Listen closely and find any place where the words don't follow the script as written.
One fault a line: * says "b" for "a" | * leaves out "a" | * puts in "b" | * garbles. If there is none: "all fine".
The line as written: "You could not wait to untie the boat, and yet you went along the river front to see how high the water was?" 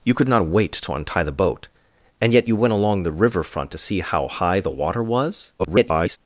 * garbles